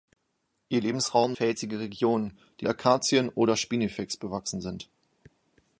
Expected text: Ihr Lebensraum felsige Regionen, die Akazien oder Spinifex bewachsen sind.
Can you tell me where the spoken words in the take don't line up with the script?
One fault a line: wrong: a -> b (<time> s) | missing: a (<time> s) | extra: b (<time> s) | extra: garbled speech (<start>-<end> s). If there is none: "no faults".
no faults